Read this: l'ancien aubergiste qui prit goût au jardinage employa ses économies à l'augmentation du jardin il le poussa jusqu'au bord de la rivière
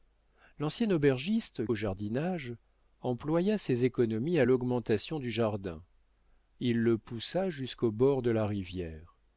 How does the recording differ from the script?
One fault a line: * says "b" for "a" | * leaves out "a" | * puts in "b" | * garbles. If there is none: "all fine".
* leaves out "qui prit goût"